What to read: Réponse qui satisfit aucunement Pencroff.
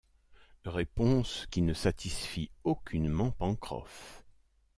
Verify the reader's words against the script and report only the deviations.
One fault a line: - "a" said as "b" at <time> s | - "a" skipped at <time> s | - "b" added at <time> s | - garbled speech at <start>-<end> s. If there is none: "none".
- "ne" added at 1.6 s